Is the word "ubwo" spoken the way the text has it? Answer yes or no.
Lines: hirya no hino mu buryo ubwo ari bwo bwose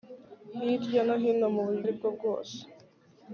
no